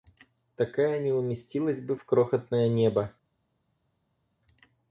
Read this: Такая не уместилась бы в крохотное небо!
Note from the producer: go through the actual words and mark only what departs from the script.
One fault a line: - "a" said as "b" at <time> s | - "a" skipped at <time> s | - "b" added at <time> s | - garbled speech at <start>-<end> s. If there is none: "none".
none